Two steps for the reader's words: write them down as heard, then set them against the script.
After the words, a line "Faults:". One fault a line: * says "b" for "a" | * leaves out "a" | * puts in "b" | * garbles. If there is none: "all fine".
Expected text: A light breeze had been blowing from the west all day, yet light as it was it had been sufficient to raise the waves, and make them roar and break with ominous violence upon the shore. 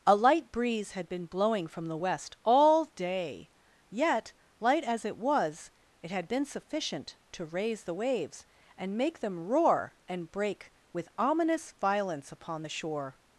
A light breeze had been blowing from the west all day, yet light as it was it had been sufficient to raise the waves, and make them roar and break with ominous violence upon the shore.
Faults:
all fine